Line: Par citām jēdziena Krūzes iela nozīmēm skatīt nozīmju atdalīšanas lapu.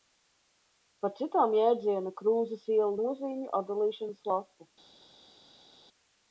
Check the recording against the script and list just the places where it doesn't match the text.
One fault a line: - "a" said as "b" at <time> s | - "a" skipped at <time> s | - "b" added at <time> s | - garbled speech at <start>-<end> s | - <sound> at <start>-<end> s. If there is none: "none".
- "nozīmēm skatīt" skipped at 3.0 s